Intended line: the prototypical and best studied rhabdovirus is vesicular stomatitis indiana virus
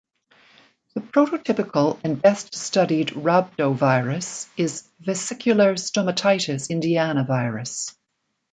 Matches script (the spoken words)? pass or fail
pass